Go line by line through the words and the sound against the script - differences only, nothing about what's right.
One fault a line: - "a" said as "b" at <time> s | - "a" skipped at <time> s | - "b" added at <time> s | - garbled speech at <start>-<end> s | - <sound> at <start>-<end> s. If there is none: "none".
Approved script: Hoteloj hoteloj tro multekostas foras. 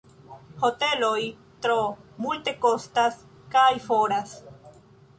- "hoteloj" skipped at 1.2 s
- "kaj" added at 3.6 s